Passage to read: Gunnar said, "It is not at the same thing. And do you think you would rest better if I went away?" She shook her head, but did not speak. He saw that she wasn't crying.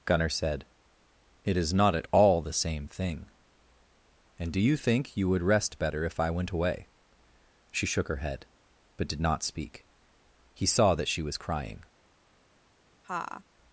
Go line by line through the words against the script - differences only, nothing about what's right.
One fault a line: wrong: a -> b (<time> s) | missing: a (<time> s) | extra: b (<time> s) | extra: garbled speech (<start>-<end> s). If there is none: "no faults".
extra: all (2.1 s)
wrong: wasn't -> was (11.2 s)